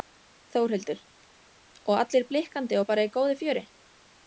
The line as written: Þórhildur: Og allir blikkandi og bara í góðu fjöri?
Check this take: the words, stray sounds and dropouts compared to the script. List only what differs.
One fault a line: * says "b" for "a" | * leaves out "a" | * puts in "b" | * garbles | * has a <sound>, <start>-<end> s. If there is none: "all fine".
all fine